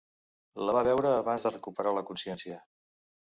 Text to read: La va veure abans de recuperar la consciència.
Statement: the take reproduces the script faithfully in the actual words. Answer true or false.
true